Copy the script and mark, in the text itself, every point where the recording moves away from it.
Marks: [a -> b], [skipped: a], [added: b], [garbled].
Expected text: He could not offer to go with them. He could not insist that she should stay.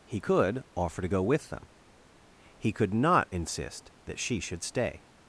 He could [skipped: not] offer to go with them. He could not insist that she should stay.